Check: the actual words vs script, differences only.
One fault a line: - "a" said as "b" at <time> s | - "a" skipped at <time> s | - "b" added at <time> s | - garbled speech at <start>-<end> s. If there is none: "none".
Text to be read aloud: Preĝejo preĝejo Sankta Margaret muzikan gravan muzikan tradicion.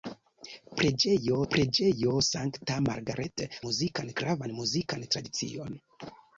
none